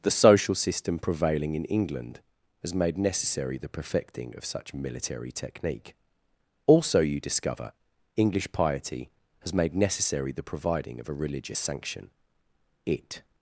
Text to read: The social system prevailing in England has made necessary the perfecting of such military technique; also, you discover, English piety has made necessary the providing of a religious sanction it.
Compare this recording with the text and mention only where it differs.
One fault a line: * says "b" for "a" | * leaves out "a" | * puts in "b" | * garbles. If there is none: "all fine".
all fine